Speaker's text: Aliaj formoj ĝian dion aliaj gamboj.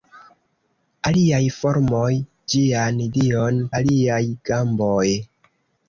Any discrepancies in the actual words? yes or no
no